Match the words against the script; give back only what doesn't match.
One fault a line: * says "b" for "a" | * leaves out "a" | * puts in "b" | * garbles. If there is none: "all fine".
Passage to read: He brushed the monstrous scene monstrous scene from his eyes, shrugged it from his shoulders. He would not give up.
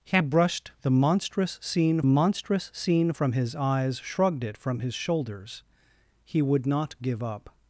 all fine